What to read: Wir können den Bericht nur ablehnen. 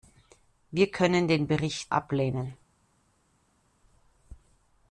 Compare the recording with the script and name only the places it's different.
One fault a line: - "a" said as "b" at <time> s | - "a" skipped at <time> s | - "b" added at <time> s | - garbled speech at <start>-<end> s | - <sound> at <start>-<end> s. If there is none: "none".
- "nur" skipped at 1.9 s